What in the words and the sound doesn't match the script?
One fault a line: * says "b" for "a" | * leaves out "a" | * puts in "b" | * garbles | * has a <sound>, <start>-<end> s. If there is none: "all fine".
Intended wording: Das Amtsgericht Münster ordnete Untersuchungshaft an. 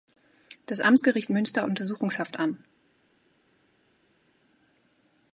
* leaves out "ordnete"